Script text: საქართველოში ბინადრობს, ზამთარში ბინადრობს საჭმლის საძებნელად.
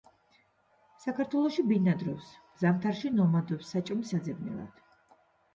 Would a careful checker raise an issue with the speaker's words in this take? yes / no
yes